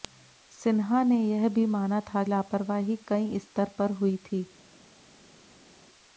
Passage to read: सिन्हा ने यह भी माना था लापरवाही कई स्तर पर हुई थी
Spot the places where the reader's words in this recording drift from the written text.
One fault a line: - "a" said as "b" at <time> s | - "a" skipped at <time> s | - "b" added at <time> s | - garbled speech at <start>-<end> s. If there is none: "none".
none